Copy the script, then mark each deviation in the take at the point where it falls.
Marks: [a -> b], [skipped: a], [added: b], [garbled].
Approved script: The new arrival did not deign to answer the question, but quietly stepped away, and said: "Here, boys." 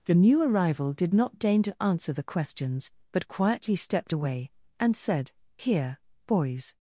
The new arrival did not deign to answer the [question, -> questions] but quietly stepped away, and said: "Here, boys."